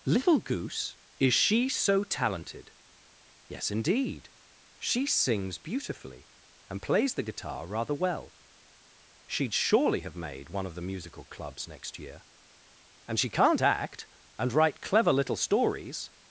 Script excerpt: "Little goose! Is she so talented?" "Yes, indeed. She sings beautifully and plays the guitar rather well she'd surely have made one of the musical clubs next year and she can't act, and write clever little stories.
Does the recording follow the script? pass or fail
pass